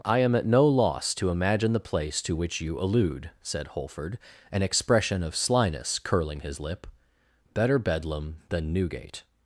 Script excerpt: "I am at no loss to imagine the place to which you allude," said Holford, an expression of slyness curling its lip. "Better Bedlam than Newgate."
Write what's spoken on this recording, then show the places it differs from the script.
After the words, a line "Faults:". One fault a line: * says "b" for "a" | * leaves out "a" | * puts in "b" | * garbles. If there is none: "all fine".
"I am at no loss to imagine the place to which you allude," said Holford, an expression of slyness curling his lip. "Better Bedlam than Newgate."
Faults:
* says "his" for "its"